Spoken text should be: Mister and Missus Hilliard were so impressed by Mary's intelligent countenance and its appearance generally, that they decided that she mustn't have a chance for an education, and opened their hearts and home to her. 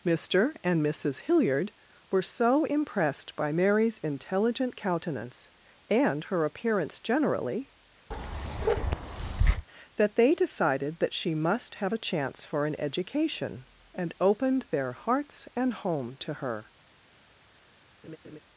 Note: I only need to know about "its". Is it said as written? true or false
false